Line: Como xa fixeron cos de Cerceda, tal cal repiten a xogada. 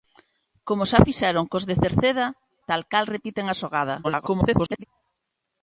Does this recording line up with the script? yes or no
no